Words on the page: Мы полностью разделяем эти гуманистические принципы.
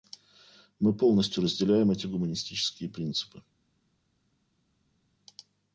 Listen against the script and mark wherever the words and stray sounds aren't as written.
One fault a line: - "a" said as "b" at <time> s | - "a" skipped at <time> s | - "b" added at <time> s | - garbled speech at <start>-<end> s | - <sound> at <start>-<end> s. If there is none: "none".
none